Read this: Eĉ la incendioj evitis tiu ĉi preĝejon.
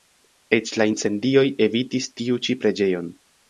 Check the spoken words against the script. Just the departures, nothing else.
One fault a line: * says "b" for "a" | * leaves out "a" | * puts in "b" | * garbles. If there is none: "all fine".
all fine